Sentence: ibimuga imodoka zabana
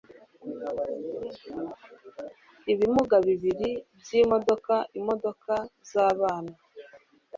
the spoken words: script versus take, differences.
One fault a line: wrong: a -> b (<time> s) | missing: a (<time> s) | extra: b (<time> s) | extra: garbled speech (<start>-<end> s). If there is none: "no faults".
extra: bibiri byimodoka (3.3 s)